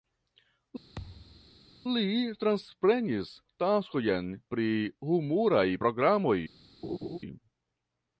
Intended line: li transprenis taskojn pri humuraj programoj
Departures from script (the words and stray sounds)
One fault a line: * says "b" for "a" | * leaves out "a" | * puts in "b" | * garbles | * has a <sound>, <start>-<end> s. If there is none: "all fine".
* has a thud, 1.0-1.6 s
* has a laugh, 6.8-7.2 s